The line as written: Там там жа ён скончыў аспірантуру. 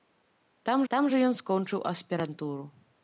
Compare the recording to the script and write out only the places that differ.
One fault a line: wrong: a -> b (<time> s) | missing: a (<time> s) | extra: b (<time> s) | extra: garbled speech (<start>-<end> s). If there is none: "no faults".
no faults